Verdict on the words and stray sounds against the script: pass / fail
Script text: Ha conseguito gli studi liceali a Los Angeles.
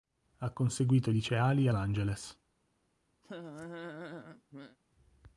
fail